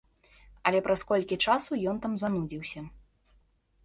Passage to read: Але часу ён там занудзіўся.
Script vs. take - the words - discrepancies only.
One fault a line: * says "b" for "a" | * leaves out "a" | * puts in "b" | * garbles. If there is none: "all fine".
* puts in "праз колькі"